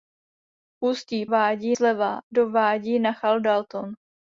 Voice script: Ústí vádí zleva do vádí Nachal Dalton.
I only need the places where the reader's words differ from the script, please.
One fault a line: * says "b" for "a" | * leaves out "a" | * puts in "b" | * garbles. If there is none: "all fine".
all fine